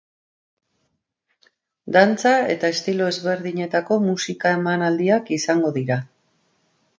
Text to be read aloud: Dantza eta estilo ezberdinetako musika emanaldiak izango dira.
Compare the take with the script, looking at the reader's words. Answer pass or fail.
pass